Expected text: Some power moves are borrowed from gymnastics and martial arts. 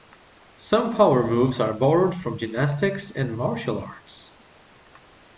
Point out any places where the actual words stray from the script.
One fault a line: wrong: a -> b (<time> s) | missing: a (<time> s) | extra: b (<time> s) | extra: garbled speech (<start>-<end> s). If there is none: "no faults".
no faults